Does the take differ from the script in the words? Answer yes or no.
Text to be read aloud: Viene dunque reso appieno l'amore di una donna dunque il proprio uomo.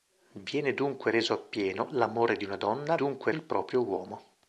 no